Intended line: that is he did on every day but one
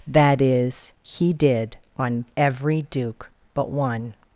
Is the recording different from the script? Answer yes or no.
yes